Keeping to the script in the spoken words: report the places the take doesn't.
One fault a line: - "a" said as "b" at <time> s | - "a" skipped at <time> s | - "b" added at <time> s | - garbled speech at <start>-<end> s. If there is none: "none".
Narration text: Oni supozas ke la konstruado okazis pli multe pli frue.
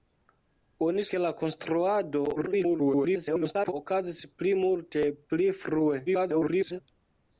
- "supozas" skipped at 1.0 s
- garbled speech at 2.4-3.7 s
- garbled speech at 6.1-6.8 s